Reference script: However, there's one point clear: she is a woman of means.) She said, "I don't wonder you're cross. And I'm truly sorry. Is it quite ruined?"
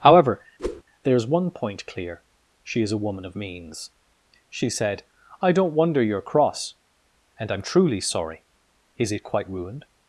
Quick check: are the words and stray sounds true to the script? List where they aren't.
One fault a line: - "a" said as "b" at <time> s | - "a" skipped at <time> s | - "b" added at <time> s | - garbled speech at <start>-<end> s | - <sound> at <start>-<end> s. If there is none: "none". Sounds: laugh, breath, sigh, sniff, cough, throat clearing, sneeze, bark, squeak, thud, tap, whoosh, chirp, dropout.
- whoosh at 0.6-0.8 s